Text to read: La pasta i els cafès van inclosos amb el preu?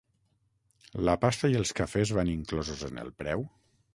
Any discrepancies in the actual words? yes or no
yes